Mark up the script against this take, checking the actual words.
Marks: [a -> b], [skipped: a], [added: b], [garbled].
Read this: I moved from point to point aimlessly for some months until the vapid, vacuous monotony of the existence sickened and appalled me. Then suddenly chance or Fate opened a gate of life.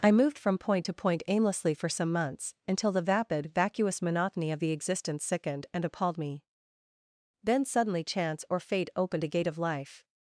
I moved from point to point aimlessly for some months until the vapid, vacuous monotony of the existence sickened and appalled me. Then suddenly chance or Fate opened a gate of life.